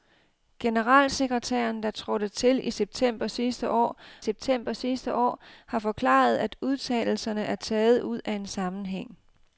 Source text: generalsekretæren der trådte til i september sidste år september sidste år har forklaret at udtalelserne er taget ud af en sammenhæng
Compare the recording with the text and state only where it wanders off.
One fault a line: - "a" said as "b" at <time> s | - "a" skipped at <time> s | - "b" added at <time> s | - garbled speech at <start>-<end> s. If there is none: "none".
none